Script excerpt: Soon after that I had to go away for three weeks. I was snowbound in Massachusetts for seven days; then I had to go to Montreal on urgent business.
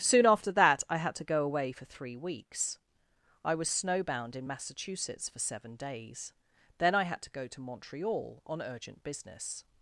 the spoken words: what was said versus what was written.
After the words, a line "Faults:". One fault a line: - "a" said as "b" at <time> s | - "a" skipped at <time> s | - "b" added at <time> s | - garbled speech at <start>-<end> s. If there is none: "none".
Soon after that I had to go away for three weeks. I was snowbound in Massachusetts for seven days; then I had to go to Montreal on urgent business.
Faults:
none